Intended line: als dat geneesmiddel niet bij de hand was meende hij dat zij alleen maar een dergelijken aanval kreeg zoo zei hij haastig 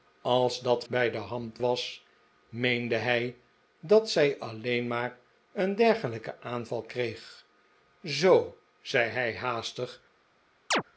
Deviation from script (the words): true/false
true